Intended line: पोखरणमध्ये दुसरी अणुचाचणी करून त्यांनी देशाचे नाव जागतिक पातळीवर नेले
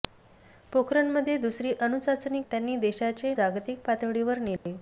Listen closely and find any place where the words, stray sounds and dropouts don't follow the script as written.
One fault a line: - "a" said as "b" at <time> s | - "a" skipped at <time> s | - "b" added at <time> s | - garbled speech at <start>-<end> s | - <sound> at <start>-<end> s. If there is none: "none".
- "करून" skipped at 2.4 s
- "नाव" skipped at 3.3 s
- dropout at 4.6-4.7 s